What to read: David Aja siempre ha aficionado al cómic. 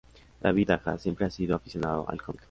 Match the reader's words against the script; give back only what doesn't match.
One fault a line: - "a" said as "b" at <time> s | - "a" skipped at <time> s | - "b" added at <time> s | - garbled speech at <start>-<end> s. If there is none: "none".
- "sido" added at 1.3 s